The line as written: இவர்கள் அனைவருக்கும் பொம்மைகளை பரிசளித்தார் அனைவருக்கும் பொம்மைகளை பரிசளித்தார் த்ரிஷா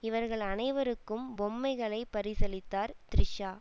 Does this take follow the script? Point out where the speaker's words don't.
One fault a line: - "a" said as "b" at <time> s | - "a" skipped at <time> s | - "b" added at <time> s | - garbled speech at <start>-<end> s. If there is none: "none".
- "அனைவருக்கும் பொம்மைகளை பரிசளித்தார்" skipped at 2.9 s